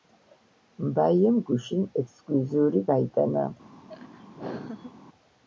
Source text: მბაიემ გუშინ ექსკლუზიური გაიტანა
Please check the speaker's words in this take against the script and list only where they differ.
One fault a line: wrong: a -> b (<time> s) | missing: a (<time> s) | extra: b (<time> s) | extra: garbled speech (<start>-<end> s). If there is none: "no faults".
no faults